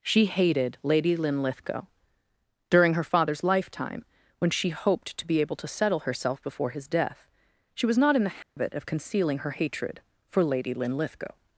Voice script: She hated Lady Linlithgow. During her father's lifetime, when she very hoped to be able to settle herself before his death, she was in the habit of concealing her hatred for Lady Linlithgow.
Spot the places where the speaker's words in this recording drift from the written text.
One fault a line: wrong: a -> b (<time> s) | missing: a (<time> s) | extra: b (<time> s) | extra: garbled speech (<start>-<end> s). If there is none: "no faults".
missing: very (4.7 s)
extra: not (8.0 s)